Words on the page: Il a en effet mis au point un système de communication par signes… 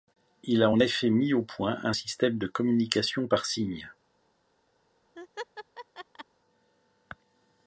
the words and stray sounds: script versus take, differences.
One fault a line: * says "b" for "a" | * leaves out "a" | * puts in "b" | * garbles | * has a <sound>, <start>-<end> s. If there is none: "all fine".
* has a laugh, 5.2-6.3 s